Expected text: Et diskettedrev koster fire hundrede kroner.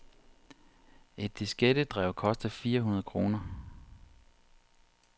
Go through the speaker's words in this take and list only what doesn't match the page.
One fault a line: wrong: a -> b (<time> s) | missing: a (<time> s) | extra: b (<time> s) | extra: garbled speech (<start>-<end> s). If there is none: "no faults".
no faults